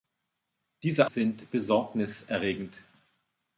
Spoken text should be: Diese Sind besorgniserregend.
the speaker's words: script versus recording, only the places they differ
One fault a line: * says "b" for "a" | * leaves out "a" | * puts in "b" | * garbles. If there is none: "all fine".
all fine